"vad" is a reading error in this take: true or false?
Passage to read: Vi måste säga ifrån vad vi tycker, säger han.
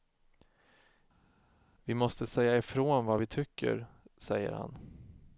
false